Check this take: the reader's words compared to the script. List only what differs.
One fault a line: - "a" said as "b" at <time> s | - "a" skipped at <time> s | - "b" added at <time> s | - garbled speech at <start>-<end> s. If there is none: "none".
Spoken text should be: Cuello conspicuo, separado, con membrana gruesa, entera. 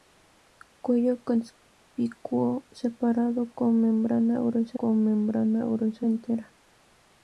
- "con membrana gruesa" added at 4.7 s